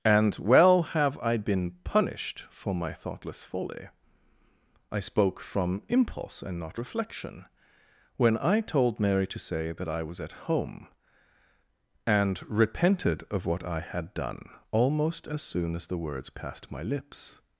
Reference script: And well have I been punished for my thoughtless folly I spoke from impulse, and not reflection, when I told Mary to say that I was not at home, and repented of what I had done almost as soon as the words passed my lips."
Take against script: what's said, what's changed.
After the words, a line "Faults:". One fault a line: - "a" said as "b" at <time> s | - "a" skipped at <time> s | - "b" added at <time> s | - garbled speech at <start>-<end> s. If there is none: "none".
And well have I been punished for my thoughtless folly I spoke from impulse, and not reflection, when I told Mary to say that I was at home, and repented of what I had done almost as soon as the words passed my lips."
Faults:
- "not" skipped at 10.2 s